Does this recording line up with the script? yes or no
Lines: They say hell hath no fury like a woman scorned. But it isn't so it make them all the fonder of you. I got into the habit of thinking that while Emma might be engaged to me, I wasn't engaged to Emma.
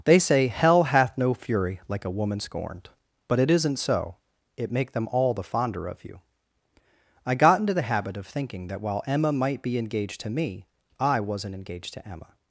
yes